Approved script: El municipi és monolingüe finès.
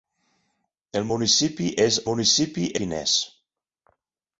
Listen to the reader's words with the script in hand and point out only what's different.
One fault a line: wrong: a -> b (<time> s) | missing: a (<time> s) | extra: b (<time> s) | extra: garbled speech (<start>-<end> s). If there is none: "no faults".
wrong: monolingüe -> municipi (2.1 s)